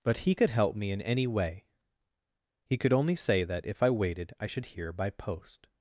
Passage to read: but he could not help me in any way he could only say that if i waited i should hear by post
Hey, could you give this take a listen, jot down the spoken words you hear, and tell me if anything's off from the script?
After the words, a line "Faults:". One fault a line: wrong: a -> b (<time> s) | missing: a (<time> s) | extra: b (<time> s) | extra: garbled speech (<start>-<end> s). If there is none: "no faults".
but he could help me in any way he could only say that if i waited i should hear by post
Faults:
missing: not (0.5 s)